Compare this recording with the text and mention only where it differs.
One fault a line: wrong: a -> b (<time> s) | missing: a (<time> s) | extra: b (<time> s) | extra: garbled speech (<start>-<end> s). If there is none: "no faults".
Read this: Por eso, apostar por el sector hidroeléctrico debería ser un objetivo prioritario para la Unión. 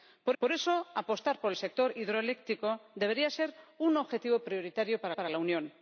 extra: por (0.4 s)
extra: para (5.1 s)